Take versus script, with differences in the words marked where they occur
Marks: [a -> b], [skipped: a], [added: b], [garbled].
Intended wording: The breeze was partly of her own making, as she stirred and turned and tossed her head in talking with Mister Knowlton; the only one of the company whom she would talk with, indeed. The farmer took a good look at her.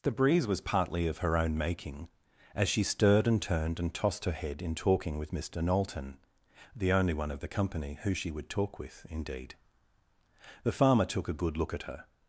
The breeze was partly of her own making, as she stirred and turned and tossed her head in talking with Mister Knowlton; the only one of the company [whom -> who] she would talk with, indeed. The farmer took a good look at her.